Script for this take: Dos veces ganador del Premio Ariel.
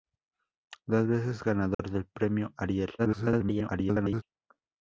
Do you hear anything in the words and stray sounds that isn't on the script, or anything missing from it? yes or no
yes